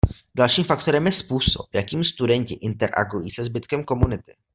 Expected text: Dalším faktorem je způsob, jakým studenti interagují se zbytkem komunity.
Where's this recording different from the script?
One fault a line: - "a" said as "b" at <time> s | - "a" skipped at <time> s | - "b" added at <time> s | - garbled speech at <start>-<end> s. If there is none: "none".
none